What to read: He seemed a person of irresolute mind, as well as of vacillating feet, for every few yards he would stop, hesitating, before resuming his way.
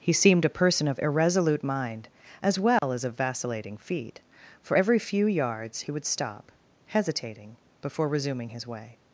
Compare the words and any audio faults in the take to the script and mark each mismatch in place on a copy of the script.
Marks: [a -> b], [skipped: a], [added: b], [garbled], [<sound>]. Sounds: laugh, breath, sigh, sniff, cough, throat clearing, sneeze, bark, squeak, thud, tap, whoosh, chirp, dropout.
He seemed a person of irresolute mind, as well [dropout] as of vacillating feet, for every few yards he would stop, hesitating, before resuming his way.